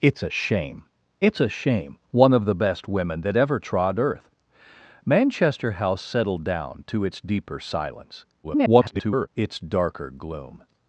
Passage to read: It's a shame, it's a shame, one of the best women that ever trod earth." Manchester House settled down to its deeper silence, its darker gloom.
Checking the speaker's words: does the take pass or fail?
fail